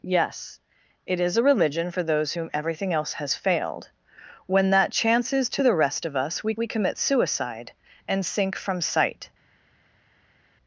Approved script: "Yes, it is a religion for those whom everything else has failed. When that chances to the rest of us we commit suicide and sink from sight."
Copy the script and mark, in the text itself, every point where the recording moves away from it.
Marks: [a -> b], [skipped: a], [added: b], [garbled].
"Yes, it is a religion for those whom everything else has failed. When that chances to the rest of us we [added: we] commit suicide and sink from sight."